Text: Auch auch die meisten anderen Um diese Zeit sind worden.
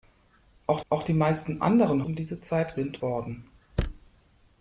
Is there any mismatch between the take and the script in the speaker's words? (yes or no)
no